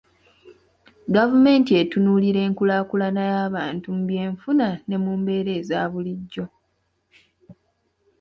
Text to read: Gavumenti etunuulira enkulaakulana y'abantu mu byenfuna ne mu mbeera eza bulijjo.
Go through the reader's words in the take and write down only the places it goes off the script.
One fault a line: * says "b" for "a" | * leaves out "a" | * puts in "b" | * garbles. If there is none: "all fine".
all fine